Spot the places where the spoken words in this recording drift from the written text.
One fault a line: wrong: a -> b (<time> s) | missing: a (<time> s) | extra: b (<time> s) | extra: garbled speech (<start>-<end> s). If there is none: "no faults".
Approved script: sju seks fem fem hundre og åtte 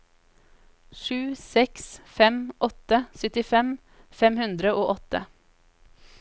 extra: åtte syttifem (2.7 s)